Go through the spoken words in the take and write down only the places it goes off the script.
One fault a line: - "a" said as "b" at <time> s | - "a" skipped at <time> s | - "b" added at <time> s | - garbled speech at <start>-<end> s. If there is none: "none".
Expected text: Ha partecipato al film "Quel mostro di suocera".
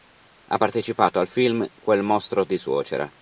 none